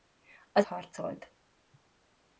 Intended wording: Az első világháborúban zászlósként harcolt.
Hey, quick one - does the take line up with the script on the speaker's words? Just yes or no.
no